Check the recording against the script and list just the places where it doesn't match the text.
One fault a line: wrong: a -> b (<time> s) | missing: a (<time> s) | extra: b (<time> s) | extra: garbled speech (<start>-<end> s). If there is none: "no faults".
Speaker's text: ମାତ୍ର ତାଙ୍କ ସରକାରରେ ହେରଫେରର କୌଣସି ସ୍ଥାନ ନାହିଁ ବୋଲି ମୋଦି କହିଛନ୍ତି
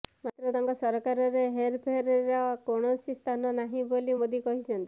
no faults